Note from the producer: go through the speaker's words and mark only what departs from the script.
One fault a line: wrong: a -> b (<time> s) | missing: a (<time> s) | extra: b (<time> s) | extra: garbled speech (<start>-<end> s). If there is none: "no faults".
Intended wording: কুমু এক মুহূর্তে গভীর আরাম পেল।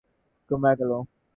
missing: মুহূর্তে গভীর আরাম (0.8 s)